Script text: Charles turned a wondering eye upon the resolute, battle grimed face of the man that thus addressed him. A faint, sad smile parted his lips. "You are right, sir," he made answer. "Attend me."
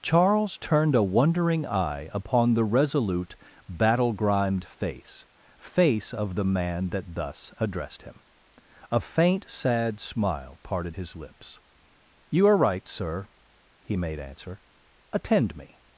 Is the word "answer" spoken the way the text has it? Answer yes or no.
yes